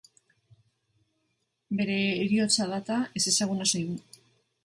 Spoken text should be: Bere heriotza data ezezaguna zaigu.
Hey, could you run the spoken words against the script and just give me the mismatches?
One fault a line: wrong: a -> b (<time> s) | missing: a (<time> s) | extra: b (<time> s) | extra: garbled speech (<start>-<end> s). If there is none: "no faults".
no faults